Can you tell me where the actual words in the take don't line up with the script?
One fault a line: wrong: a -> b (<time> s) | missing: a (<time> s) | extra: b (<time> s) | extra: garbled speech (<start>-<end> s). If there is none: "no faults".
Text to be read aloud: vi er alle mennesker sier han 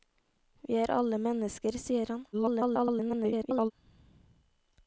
extra: garbled speech (2.3-3.7 s)